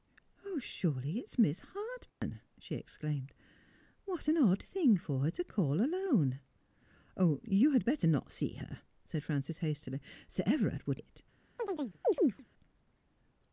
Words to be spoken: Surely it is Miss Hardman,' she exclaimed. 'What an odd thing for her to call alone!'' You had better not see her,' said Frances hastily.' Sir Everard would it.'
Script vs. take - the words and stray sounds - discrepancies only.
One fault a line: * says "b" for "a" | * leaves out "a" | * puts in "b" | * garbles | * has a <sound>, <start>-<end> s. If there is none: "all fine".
* has a dropout, 2.1-2.2 s
* has a chirp, 11.6-12.5 s